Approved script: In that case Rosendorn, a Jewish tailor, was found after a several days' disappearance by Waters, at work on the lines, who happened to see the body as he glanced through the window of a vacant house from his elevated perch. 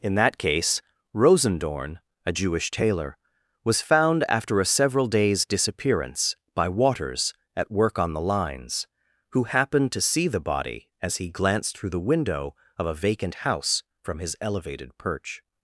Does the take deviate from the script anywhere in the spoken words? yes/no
no